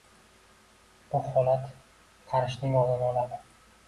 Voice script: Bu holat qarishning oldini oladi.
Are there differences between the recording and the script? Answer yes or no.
no